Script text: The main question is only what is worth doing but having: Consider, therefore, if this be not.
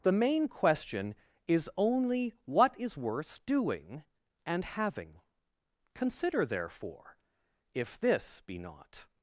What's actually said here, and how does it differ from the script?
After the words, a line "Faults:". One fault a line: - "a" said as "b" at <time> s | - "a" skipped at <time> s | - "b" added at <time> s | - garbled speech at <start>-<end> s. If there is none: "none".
The main question is only what is worth doing and having: Consider, therefore, if this be not.
Faults:
- "but" said as "and" at 4.5 s